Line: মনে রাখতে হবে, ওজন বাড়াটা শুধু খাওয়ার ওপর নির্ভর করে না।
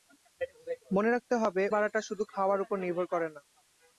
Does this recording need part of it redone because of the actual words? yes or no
yes